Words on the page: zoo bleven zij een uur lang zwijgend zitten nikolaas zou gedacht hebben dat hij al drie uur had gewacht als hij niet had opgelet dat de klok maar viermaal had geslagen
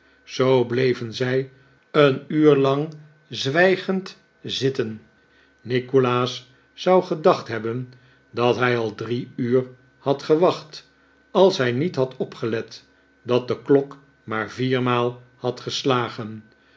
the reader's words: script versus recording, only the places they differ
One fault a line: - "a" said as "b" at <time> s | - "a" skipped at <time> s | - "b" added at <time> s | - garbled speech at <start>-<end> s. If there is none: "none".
none